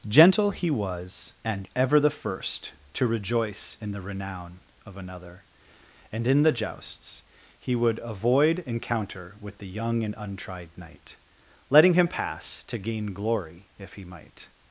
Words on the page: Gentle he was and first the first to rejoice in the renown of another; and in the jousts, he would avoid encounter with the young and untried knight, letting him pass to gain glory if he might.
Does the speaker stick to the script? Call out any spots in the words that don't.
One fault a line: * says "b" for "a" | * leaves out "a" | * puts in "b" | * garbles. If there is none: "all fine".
* says "ever" for "first"